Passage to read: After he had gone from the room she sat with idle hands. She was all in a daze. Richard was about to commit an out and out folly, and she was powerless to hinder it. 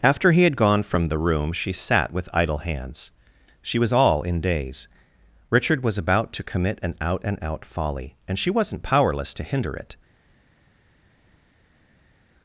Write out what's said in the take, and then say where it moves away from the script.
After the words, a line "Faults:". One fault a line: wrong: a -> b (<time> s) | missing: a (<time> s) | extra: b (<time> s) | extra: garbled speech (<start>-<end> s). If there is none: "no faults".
After he had gone from the room she sat with idle hands. She was all in daze. Richard was about to commit an out and out folly, and she wasn't powerless to hinder it.
Faults:
missing: a (4.4 s)
wrong: was -> wasn't (8.5 s)